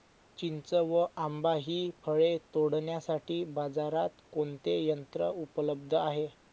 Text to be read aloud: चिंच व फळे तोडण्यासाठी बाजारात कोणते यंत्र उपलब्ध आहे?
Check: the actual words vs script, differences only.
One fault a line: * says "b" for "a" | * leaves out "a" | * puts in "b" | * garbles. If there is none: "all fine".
* puts in "आंबा हि"